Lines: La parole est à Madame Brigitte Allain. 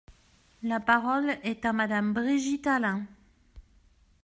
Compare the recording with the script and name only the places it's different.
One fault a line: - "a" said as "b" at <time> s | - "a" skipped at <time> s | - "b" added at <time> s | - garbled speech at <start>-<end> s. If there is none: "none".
none